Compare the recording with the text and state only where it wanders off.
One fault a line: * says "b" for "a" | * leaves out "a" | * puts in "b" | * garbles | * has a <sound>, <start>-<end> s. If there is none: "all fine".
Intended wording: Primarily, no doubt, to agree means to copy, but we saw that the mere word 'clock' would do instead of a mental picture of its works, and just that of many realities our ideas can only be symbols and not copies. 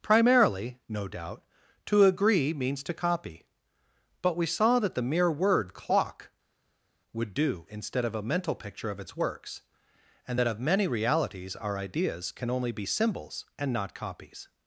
* leaves out "just"